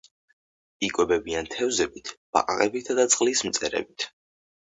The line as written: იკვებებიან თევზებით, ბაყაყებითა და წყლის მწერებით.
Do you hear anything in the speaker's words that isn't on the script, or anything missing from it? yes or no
no